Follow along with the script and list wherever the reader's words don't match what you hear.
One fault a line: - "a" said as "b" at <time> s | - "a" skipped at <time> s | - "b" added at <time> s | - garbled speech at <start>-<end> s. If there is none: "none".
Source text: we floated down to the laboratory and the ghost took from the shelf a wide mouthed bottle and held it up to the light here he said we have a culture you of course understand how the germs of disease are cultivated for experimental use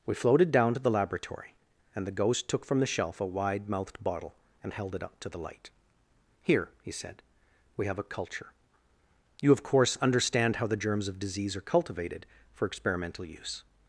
none